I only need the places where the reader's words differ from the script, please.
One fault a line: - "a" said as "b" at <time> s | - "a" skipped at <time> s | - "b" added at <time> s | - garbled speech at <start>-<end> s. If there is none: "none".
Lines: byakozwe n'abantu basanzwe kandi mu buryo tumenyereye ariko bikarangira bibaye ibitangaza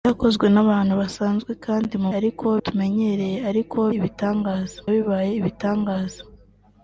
- "buryo" said as "ariko" at 2.2 s
- "bikarangira" said as "ibitangaza" at 4.0 s